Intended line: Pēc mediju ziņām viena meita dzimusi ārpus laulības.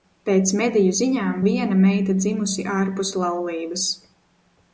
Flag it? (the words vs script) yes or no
no